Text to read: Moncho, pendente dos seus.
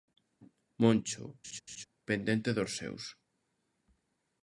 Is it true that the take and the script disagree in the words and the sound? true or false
true